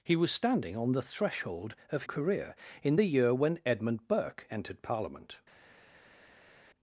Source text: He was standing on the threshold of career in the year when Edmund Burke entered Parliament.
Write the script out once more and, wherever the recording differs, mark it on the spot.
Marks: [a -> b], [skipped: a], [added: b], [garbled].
He was standing on the threshold of career in the year when Edmund Burke entered Parliament.